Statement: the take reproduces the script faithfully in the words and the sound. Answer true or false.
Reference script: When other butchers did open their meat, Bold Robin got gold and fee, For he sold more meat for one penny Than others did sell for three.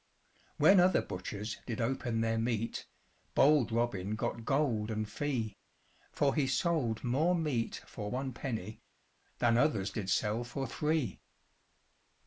true